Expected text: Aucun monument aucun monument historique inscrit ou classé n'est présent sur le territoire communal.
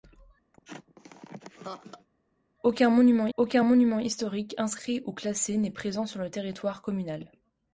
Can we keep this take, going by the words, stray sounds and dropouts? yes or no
no